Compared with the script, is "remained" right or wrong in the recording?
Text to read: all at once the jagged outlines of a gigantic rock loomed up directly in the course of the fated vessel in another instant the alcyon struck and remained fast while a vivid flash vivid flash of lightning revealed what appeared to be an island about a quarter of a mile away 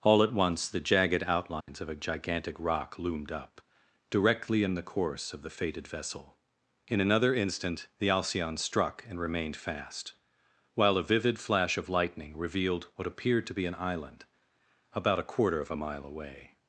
right